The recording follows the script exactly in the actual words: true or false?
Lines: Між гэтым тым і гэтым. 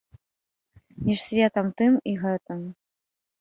false